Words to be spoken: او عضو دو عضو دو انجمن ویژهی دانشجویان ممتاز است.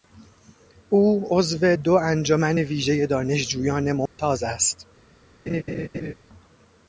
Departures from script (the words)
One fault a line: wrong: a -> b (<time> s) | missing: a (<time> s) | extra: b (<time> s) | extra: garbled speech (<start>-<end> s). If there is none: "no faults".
missing: عضو دو (1.9 s)